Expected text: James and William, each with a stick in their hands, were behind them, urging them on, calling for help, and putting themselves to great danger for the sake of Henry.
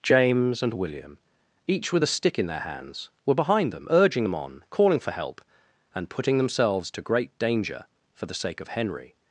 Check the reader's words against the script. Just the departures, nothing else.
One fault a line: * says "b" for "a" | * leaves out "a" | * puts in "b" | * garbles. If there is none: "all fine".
all fine